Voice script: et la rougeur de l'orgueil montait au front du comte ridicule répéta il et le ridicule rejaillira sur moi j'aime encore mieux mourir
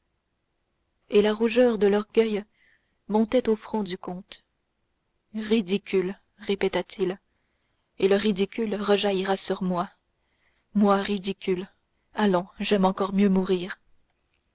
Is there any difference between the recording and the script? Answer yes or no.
yes